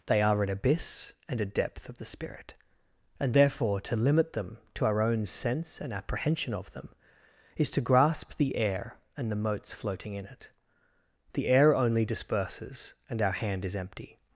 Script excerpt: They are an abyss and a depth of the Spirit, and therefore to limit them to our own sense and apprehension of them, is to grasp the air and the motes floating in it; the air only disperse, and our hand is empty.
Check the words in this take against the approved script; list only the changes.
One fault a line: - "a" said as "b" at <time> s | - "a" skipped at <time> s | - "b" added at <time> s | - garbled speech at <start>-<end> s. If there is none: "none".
- "disperse" said as "disperses" at 12.1 s